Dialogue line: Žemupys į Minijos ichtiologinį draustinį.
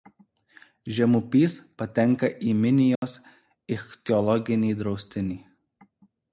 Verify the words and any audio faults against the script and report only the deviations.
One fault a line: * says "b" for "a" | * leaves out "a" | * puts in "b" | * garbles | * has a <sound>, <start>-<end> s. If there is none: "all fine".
* puts in "patenka"
* has a dropout, 3.0-3.0 s